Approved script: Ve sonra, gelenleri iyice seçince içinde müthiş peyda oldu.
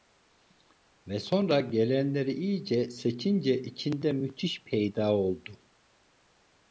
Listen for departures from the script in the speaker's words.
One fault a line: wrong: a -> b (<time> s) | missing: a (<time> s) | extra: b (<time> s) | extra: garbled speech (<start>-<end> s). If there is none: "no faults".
no faults